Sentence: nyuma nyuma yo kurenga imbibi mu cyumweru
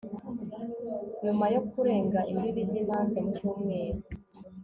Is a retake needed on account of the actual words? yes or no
yes